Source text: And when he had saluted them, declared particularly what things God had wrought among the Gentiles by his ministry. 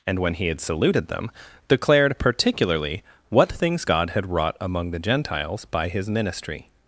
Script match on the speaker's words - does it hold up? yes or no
yes